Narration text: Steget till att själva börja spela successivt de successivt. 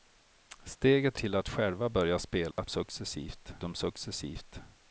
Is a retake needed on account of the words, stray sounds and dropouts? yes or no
yes